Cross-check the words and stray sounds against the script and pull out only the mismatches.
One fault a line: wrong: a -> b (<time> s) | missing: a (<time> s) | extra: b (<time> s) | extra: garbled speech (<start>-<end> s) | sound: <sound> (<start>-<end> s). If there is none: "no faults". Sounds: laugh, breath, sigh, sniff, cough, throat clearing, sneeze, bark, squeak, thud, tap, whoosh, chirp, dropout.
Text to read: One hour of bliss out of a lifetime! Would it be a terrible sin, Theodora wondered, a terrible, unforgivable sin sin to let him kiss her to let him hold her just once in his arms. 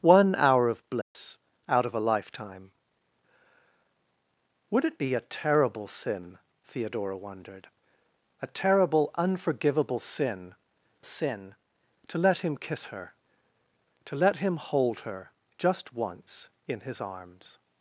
sound: dropout (1.0-1.1 s)